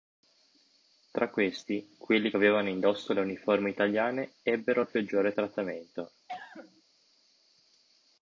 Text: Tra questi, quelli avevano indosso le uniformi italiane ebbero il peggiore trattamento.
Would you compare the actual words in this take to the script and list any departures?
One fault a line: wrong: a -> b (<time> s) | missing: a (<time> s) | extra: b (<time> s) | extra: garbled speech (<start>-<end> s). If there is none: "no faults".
no faults